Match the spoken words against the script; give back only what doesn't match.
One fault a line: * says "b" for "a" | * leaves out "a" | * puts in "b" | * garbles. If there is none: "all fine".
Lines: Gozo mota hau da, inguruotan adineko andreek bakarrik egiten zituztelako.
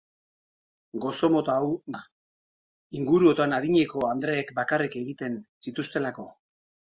all fine